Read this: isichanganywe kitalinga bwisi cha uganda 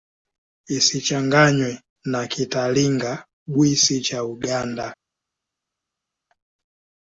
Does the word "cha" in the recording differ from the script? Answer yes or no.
no